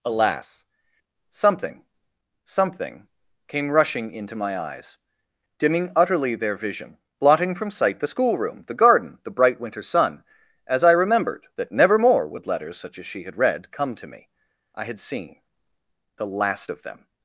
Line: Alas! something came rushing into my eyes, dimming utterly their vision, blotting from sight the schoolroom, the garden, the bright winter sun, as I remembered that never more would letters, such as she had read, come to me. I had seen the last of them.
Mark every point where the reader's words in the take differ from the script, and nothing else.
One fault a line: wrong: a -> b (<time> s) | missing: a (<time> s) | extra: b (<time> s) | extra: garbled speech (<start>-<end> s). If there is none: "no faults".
extra: something (2.4 s)